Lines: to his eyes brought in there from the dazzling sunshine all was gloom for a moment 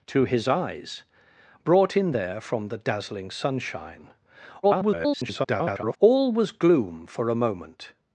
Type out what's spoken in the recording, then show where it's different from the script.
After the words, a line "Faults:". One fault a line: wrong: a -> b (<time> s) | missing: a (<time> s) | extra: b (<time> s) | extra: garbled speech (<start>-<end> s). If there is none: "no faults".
to his eyes brought in there from the dazzling sunshine [garbled] all was gloom for a moment
Faults:
extra: garbled speech (4.6-6.0 s)